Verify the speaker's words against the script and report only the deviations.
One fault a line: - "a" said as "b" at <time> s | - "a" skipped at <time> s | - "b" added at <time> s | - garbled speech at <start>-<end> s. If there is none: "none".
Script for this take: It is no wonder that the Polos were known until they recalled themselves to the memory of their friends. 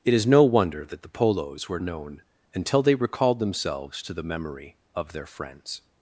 none